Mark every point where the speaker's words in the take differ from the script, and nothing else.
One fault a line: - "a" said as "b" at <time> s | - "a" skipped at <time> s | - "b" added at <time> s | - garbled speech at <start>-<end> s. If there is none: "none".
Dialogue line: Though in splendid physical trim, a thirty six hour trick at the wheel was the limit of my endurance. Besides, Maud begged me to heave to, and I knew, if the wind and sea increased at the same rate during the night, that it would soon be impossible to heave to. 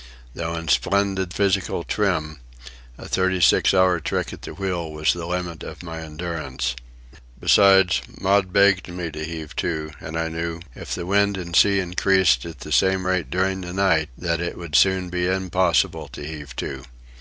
none